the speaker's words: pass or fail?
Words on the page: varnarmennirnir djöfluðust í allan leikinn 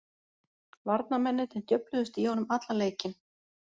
fail